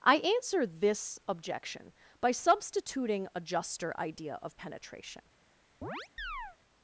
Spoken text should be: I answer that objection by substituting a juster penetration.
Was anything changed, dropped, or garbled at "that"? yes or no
yes